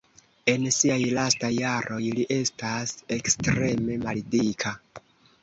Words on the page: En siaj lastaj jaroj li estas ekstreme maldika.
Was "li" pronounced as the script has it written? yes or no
yes